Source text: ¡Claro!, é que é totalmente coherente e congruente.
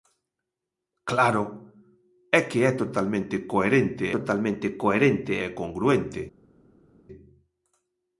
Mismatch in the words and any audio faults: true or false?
true